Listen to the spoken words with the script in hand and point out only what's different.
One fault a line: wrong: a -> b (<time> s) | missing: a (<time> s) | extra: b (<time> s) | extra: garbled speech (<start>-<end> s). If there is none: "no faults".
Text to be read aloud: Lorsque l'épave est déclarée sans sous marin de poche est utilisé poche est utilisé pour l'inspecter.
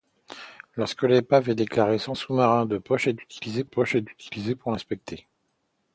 no faults